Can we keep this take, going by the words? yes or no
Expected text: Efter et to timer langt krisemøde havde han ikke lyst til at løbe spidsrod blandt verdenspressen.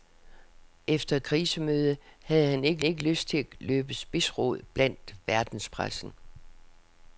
no